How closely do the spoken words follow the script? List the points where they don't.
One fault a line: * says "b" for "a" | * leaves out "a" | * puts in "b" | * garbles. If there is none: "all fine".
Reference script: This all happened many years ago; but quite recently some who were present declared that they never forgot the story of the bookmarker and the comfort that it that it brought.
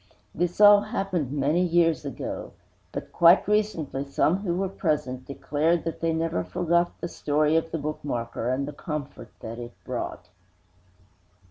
* leaves out "that it"